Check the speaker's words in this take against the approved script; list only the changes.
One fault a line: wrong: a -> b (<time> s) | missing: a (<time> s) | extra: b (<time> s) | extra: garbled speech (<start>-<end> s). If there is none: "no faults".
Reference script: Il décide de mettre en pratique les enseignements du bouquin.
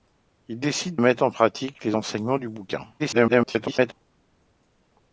missing: de (1.0 s)
extra: garbled speech (3.0-3.9 s)